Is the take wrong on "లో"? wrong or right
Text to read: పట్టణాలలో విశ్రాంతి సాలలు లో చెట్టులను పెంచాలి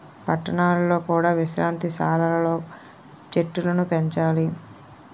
right